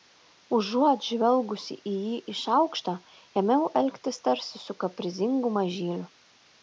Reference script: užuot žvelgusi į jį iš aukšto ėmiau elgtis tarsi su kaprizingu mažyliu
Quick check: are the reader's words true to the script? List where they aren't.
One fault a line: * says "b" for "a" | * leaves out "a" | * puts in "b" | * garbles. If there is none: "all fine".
all fine